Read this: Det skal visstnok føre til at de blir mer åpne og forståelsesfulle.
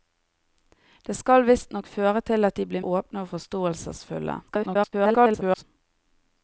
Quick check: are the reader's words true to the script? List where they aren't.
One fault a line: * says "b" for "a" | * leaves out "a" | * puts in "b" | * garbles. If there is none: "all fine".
* leaves out "mer"
* garbles